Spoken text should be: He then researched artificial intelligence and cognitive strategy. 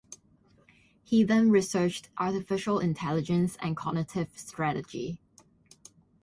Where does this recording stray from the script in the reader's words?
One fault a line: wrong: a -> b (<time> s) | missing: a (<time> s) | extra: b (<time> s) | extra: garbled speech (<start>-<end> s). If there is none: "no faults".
no faults